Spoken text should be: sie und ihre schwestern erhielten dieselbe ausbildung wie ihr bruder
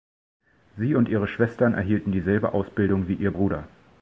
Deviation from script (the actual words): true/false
false